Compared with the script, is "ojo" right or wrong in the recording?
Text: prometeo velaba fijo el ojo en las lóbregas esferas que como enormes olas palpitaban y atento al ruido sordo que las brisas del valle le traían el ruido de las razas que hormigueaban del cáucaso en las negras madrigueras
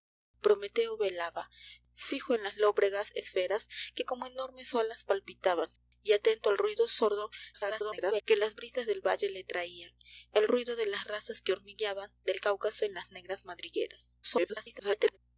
wrong